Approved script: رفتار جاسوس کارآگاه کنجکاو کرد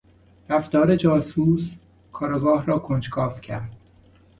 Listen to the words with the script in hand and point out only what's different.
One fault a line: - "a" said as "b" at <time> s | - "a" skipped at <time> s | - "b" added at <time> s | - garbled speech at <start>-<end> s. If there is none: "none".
- "را" added at 2.7 s